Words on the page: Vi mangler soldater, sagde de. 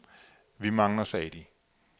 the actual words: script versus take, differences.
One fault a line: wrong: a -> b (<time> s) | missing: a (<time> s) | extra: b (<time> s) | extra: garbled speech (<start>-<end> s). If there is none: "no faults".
missing: soldater (1.0 s)